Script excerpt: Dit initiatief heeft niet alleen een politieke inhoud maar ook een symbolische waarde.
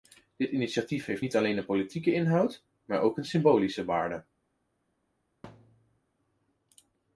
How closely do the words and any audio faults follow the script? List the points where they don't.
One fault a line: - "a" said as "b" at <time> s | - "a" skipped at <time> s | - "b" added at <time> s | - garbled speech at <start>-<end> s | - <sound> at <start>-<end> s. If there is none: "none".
- thud at 5.4-6.0 s